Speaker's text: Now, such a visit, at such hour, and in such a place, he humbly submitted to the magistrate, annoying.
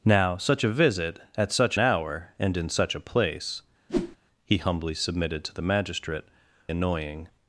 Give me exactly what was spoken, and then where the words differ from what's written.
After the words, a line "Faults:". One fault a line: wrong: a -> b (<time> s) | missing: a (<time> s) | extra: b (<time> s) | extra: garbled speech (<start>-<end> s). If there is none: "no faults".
Now, such a visit, at such hour, and in such a place, he humbly submitted to the magistrate, annoying.
Faults:
no faults